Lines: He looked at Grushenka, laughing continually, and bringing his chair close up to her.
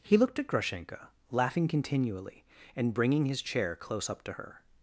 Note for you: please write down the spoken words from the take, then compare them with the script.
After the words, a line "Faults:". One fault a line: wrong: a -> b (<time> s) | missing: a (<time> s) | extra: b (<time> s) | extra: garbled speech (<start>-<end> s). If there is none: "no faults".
He looked at Grushenka, laughing continually, and bringing his chair close up to her.
Faults:
no faults